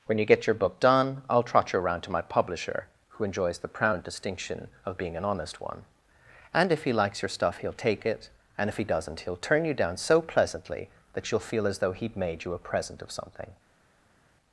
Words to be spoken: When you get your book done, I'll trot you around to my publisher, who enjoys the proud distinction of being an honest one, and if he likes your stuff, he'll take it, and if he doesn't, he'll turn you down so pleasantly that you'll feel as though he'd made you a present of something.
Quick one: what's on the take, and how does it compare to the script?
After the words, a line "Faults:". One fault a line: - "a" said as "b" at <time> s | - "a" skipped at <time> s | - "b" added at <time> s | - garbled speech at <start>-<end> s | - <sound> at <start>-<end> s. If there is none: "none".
When you get your book done, I'll trot you around to my publisher, who enjoys the proud distinction of being an honest one, and if he likes your stuff, he'll take it, and if he doesn't, he'll turn you down so pleasantly that you'll feel as though he'd made you a present of something.
Faults:
none